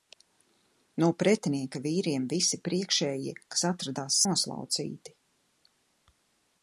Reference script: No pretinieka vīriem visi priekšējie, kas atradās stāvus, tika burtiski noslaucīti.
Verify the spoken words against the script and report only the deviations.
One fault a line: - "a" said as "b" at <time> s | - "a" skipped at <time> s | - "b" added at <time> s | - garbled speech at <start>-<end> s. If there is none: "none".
- "stāvus tika burtiski" skipped at 4.2 s